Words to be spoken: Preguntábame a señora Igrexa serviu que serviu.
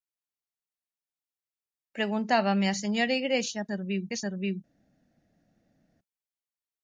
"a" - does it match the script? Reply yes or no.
yes